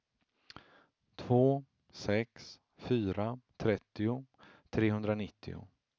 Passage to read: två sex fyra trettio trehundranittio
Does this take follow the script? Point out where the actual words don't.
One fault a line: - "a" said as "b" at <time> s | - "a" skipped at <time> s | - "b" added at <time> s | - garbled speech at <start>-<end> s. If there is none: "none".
none